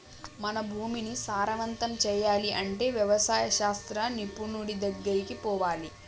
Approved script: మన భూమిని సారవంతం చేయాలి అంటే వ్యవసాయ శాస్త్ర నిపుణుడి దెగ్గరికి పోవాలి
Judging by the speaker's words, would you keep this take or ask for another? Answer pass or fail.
pass